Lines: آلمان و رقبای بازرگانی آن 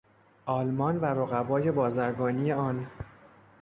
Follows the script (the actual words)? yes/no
yes